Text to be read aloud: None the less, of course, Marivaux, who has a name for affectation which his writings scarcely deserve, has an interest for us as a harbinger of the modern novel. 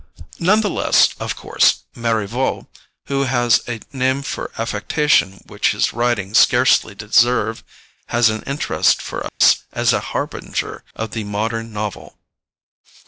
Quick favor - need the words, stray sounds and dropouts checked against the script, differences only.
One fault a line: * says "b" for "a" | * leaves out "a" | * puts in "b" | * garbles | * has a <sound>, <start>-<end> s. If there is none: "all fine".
* has a dropout, 9.3-9.4 s